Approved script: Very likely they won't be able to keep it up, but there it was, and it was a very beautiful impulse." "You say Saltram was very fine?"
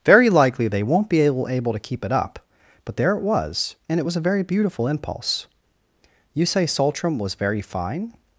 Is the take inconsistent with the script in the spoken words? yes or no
yes